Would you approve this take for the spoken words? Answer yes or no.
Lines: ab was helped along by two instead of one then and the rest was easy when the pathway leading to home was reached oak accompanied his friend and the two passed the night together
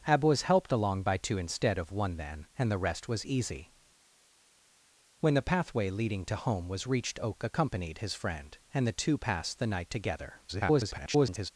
no